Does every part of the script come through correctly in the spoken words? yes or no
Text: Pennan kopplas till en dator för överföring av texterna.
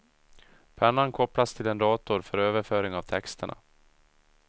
yes